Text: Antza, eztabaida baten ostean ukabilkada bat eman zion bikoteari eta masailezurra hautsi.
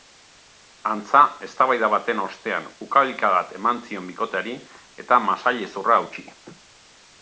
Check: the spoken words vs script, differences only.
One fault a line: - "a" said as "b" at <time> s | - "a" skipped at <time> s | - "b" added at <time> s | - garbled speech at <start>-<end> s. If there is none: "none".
none